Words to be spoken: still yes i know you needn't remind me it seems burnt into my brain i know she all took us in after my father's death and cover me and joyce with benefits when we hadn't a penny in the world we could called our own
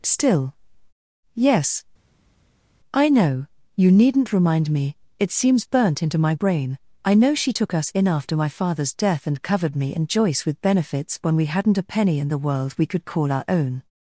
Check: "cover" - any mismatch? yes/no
yes